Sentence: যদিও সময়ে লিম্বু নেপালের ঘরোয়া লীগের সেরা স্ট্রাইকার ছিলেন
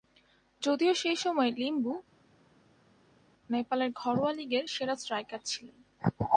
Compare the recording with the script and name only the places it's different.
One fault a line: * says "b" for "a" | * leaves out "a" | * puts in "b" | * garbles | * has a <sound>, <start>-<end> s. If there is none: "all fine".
* puts in "সেই"